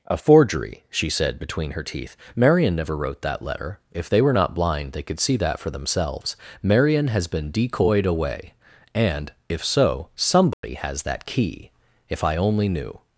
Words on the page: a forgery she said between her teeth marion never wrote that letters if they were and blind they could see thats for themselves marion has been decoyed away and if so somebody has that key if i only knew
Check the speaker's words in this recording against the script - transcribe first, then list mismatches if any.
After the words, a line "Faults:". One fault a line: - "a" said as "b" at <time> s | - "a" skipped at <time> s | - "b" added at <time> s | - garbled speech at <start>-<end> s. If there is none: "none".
a forgery she said between her teeth marion never wrote that letter if they were not blind they could see that for themselves marion has been decoyed away and if so somebody has that key if i only knew
Faults:
- "letters" said as "letter" at 3.4 s
- "and" said as "not" at 4.3 s
- "thats" said as "that" at 5.4 s